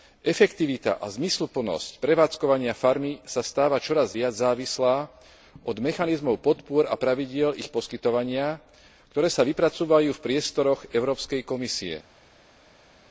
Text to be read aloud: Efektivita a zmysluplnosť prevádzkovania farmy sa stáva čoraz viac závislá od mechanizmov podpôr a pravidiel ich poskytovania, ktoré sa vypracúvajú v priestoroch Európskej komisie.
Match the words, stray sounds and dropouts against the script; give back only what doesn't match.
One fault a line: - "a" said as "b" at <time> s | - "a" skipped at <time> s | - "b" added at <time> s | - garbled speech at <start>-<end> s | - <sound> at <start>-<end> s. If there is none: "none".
none